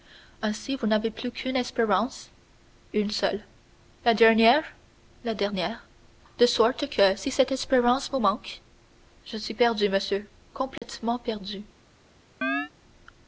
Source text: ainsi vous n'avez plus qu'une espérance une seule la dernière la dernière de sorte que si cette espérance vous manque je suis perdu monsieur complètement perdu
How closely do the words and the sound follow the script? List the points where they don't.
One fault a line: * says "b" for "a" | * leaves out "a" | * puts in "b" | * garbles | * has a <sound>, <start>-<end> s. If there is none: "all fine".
* has a dropout, 10.8-10.8 s
* has a chirp, 12.4-12.7 s